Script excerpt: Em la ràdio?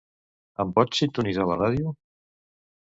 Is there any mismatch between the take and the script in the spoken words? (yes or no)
yes